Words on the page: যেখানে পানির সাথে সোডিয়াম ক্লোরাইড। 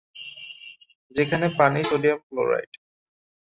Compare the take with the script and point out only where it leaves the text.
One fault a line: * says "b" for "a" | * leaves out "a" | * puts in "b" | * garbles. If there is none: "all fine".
* leaves out "সাথে"